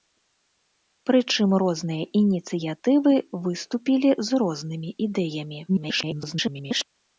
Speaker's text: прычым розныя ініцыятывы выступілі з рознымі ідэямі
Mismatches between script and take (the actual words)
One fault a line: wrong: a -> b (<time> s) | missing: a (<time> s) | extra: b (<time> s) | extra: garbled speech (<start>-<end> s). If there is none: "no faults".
extra: garbled speech (5.7-6.8 s)